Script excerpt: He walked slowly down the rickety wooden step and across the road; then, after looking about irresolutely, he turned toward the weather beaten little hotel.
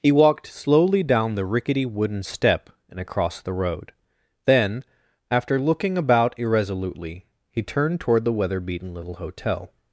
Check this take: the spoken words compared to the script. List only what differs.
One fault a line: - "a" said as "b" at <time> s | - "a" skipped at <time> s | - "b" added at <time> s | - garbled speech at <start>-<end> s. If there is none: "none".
none